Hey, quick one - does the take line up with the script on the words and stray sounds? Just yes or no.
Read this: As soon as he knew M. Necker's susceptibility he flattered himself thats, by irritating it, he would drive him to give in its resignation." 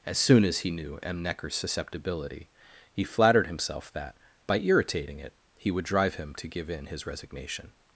no